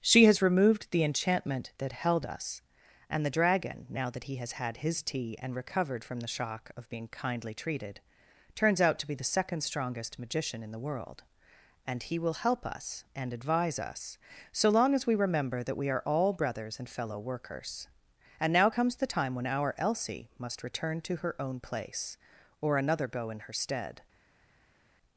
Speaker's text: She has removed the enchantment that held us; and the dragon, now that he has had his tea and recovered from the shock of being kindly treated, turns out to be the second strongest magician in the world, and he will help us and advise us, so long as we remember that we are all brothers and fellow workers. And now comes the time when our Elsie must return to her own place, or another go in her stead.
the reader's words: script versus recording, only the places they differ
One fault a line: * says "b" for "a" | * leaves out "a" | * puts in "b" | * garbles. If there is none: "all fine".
all fine